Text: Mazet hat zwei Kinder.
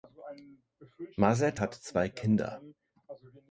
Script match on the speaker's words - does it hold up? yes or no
yes